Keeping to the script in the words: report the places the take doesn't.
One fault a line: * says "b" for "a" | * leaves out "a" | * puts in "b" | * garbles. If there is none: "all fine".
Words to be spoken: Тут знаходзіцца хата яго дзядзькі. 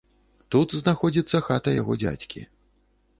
all fine